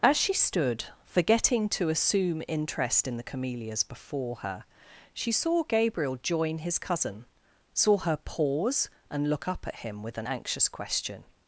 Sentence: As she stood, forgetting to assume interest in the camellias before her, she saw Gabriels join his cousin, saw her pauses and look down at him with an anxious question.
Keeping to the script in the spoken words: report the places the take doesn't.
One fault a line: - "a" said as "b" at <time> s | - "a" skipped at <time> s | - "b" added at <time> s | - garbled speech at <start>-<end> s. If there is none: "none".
- "Gabriels" said as "Gabriel" at 5.6 s
- "pauses" said as "pause" at 8.2 s
- "down" said as "up" at 9.5 s